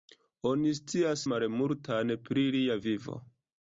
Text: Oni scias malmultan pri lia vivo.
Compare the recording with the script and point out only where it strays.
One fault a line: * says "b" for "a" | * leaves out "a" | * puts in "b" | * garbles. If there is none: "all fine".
all fine